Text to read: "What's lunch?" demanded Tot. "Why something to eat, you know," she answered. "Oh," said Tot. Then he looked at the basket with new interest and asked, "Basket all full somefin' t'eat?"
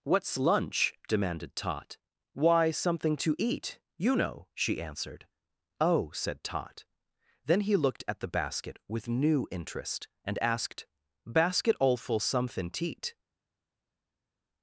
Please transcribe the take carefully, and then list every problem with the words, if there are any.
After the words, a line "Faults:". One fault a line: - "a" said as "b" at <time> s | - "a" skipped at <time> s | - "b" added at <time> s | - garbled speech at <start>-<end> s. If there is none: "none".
"What's lunch?" demanded Tot. "Why something to eat, you know," she answered. "Oh," said Tot. Then he looked at the basket with new interest and asked, "Basket all full somefin' t'eat?"
Faults:
none